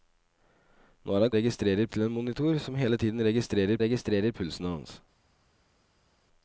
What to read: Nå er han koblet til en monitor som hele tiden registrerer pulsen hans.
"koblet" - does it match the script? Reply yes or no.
no